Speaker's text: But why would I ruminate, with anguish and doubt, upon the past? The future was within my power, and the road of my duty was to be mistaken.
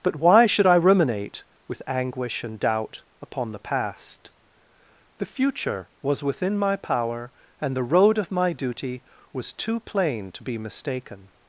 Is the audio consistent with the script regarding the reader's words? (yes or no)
no